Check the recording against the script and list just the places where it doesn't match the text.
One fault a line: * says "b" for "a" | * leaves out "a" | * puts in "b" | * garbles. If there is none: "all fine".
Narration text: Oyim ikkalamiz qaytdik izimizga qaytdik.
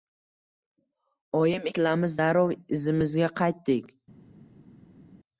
* says "darrov" for "qaytdik"